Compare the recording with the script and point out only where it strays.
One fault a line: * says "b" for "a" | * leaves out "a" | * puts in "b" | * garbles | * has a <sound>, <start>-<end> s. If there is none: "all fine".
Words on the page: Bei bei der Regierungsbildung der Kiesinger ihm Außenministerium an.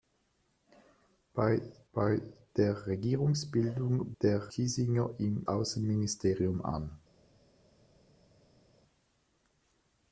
all fine